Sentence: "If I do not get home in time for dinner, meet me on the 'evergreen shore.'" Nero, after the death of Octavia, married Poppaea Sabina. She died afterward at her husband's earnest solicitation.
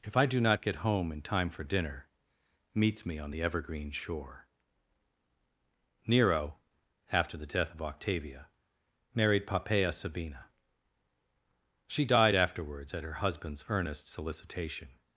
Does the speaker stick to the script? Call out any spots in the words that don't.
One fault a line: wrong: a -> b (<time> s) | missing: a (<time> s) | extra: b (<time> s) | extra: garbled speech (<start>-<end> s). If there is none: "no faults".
wrong: meet -> meets (2.7 s)
wrong: afterward -> afterwards (12.3 s)